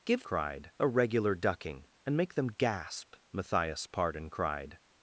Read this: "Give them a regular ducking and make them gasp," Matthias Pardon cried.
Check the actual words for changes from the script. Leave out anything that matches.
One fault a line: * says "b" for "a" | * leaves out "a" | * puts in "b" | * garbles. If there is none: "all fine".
* says "cried" for "them"